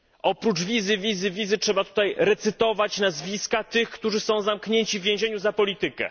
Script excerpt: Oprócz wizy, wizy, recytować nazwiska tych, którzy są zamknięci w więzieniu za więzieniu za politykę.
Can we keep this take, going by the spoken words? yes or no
no